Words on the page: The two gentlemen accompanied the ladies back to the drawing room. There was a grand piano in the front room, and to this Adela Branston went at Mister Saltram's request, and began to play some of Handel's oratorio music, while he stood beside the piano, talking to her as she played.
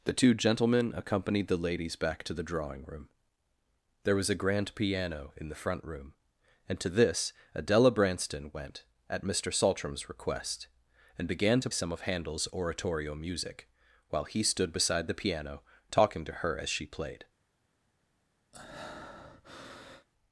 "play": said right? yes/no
no